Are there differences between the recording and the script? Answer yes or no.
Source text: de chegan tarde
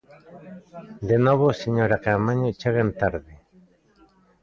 yes